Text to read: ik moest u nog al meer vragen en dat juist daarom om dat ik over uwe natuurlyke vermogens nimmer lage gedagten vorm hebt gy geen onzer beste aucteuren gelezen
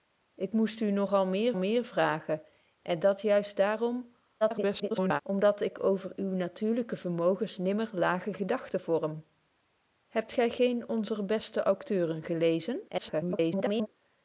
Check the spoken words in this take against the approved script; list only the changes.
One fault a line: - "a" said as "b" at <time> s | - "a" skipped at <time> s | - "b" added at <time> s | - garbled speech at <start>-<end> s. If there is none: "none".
- "meer" added at 1.5 s
- garbled speech at 4.4-5.2 s
- garbled speech at 12.9-13.9 s